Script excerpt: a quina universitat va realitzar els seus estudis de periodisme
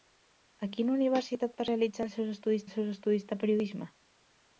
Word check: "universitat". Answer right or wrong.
right